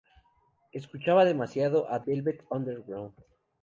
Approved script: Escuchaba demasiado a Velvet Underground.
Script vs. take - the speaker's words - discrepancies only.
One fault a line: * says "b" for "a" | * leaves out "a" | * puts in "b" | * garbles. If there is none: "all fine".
all fine